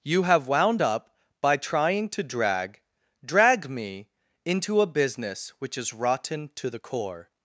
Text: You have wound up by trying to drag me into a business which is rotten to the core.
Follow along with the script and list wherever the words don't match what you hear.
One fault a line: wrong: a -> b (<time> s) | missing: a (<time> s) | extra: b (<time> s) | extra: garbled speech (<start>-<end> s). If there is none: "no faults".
extra: drag (3.2 s)